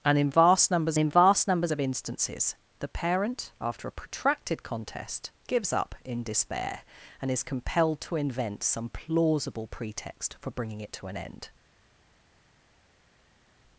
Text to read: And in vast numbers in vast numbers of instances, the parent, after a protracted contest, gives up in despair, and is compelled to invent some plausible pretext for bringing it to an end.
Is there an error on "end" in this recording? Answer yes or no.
no